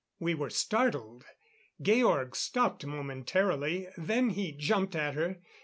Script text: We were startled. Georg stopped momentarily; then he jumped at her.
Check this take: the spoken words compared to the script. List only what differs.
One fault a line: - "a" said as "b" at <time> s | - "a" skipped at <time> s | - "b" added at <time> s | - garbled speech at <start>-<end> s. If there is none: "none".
none